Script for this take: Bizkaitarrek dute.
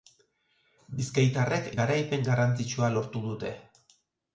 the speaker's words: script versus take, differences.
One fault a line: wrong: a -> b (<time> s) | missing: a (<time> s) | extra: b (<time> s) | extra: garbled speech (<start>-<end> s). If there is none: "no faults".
extra: garaipen garrantzitsua lortu (1.8 s)